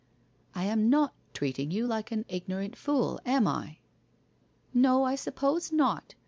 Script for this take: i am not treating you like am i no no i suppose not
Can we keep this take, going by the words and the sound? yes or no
no